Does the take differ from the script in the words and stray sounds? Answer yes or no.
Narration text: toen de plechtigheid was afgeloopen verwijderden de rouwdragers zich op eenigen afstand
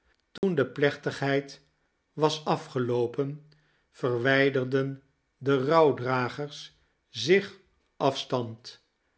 yes